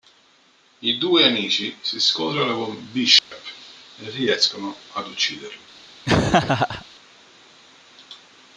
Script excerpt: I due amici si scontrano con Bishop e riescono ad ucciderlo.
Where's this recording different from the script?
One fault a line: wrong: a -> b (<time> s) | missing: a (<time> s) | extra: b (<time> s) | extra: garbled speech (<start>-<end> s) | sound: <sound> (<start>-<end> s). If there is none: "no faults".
sound: dropout (3.2-3.3 s)
sound: laugh (6.0-6.8 s)